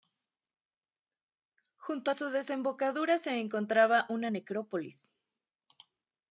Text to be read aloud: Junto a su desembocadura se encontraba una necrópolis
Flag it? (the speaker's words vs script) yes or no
no